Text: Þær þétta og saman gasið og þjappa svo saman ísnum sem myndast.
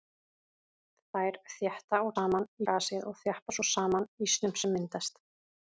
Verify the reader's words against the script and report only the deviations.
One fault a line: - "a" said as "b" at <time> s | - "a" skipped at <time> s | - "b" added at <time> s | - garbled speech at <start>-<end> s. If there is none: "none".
none